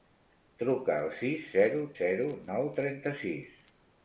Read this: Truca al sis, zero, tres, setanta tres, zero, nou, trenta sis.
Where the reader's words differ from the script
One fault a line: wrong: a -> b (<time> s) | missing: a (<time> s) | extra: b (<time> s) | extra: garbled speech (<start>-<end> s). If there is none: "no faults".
missing: tres setanta tres (1.8 s)